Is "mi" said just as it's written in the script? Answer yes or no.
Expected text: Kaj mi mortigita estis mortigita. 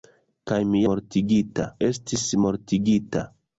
yes